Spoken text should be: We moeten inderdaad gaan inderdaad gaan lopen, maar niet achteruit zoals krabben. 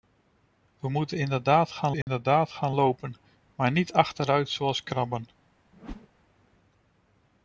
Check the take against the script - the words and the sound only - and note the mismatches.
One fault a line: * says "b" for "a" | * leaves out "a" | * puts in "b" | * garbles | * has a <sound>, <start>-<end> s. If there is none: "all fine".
* has a dropout, 2.0-2.1 s
* has a whoosh, 5.7-6.1 s